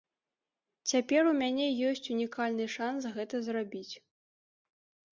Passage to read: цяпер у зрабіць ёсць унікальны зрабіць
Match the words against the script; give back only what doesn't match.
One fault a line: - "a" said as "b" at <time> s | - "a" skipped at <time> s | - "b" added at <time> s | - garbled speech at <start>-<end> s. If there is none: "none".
- "зрабіць" said as "мяне" at 1.4 s
- "шанс гэта" added at 2.8 s